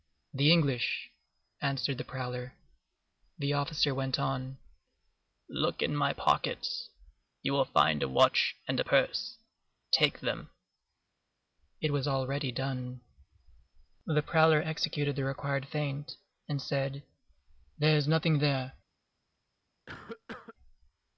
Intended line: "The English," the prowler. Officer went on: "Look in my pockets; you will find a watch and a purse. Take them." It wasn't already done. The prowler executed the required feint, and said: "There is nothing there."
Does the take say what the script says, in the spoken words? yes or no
no